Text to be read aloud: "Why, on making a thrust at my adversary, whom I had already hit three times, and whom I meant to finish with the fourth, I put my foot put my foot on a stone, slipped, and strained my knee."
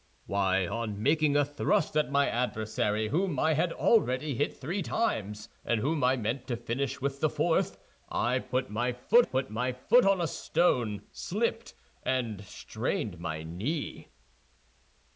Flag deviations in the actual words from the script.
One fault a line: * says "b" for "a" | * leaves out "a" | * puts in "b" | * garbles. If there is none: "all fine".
all fine